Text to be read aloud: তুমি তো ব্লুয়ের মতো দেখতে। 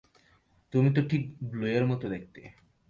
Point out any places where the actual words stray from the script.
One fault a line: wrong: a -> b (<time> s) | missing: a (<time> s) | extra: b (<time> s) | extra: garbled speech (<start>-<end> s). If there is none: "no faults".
extra: ঠিক (1.1 s)